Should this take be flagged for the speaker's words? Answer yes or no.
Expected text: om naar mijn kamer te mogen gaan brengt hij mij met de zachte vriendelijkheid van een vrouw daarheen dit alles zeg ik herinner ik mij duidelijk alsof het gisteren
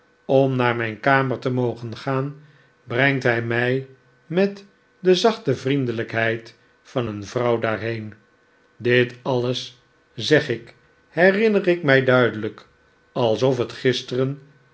no